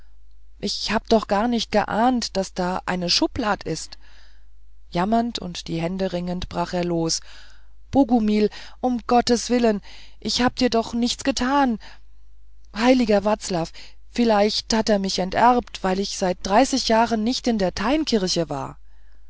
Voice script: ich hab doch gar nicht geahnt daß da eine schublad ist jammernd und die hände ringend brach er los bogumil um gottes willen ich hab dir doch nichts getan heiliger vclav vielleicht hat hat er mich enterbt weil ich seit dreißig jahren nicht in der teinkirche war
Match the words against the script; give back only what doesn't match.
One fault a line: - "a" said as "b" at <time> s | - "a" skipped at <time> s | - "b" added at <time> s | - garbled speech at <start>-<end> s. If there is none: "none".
- "hat" skipped at 14.9 s